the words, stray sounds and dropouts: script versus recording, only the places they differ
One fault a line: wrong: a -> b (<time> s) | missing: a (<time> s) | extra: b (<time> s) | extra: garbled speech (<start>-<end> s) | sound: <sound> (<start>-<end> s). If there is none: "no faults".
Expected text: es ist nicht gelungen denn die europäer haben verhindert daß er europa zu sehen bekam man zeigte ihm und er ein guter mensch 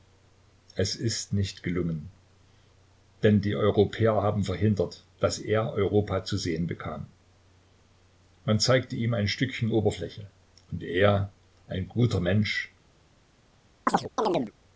extra: ein stückchen oberfläche (9.1 s)
sound: chirp (13.9-14.5 s)